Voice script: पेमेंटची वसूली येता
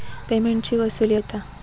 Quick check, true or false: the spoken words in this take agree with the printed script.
true